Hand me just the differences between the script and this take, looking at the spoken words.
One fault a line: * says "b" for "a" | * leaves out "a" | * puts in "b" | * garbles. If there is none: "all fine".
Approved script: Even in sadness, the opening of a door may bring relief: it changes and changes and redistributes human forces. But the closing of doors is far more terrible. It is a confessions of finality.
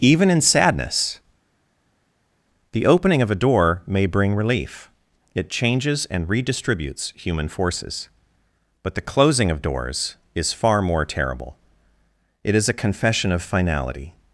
* leaves out "changes and"
* says "confession" for "confessions"